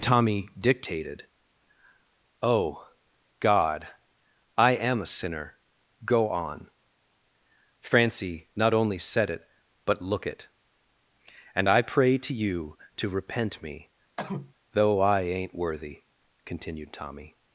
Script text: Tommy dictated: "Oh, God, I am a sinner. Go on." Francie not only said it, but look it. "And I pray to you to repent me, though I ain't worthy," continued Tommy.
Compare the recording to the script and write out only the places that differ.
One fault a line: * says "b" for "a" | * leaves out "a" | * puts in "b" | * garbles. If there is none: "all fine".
all fine